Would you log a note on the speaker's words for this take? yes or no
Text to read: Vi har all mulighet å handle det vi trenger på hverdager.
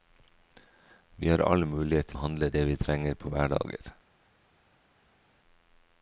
no